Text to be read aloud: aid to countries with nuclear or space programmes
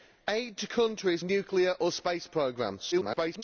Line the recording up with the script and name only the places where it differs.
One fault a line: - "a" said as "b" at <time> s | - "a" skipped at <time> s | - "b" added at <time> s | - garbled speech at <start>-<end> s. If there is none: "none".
- "with" skipped at 1.2 s
- garbled speech at 2.9-3.4 s